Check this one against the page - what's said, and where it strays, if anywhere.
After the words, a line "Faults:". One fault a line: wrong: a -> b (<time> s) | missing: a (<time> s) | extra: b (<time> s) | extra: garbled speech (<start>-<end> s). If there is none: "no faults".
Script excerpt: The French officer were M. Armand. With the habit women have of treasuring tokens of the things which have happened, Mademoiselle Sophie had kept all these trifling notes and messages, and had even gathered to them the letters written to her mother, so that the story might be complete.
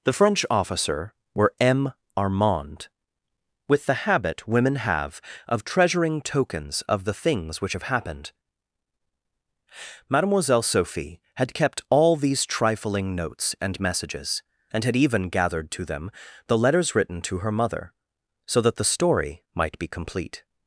The French officer were M. Armand. With the habit women have of treasuring tokens of the things which have happened, Mademoiselle Sophie had kept all these trifling notes and messages, and had even gathered to them the letters written to her mother, so that the story might be complete.
Faults:
no faults